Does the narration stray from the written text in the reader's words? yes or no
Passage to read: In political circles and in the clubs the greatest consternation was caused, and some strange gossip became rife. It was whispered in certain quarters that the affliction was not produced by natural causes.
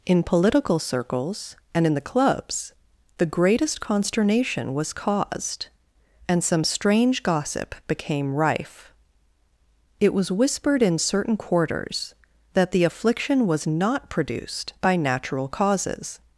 no